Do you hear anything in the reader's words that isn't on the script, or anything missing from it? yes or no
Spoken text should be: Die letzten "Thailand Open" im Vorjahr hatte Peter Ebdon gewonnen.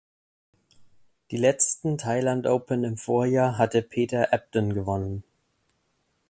no